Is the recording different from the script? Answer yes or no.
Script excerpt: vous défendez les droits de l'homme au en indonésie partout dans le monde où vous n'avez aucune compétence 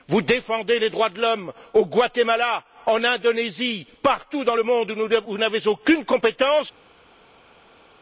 yes